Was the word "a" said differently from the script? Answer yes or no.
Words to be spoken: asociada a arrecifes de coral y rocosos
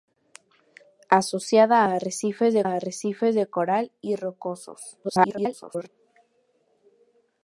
no